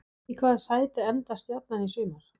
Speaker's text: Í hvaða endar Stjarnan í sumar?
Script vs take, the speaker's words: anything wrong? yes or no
yes